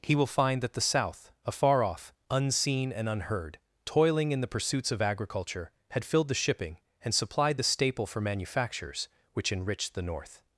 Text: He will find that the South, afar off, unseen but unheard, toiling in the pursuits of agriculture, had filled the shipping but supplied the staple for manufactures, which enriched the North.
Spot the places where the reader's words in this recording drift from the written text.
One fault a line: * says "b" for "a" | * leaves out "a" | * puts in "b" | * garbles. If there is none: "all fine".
* says "and" for "but"
* says "and" for "but"